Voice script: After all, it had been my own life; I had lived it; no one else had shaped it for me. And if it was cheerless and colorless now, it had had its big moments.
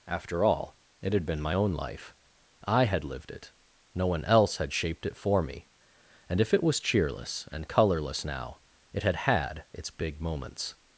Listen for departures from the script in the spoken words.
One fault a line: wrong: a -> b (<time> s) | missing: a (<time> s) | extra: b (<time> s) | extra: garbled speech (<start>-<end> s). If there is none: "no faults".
no faults